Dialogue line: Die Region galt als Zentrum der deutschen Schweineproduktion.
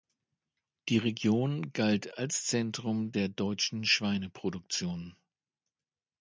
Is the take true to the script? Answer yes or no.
yes